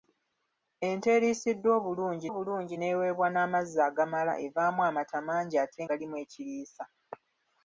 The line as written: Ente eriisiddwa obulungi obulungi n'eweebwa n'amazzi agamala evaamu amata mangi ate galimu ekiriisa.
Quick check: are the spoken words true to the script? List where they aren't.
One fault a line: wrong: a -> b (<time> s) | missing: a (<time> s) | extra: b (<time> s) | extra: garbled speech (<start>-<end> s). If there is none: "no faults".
no faults